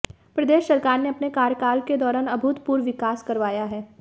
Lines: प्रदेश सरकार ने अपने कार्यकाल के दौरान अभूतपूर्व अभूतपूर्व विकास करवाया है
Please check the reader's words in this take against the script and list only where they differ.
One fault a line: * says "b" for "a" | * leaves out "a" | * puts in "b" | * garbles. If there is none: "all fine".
* leaves out "अभूतपूर्व"